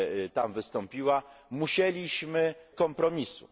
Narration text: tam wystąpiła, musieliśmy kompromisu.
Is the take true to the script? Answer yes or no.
yes